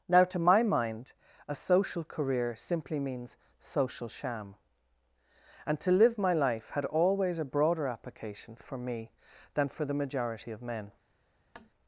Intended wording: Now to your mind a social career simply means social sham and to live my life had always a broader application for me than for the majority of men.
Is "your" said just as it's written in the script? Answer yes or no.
no